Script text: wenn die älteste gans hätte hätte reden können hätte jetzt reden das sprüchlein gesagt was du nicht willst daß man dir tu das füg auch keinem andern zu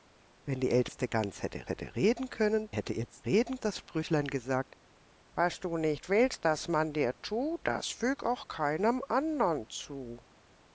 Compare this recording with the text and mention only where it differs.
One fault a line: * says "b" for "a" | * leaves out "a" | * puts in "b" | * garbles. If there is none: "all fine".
all fine